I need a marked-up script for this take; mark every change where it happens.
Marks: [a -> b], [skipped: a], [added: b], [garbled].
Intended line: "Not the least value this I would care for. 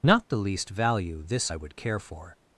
"Not the least value this I would care for.